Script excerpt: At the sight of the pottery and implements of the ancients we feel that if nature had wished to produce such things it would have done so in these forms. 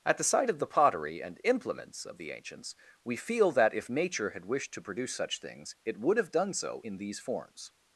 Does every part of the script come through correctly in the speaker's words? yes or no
yes